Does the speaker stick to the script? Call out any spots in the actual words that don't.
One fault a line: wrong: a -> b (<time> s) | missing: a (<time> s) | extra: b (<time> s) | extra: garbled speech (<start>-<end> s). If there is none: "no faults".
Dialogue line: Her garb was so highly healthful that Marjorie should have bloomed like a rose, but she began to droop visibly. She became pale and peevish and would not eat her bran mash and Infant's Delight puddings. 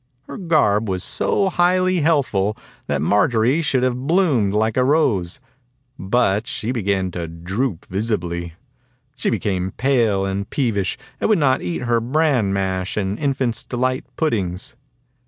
no faults